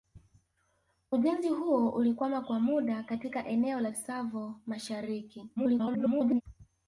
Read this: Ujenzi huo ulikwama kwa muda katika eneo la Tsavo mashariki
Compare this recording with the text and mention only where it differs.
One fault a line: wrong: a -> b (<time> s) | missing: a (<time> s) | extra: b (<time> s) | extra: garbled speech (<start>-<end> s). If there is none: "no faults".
extra: garbled speech (5.6-6.4 s)